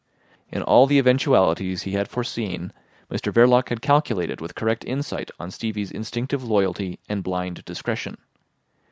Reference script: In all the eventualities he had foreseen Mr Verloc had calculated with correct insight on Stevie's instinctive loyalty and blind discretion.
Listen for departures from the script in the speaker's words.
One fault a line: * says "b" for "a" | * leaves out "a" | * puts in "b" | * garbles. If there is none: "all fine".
all fine